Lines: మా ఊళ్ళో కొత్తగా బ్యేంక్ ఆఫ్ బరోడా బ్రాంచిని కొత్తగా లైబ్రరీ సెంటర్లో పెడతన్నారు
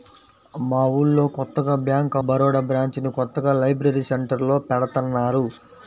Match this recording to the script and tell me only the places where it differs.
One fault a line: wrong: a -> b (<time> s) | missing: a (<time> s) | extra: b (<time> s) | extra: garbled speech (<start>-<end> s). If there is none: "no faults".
missing: ఆఫ్ (2.1 s)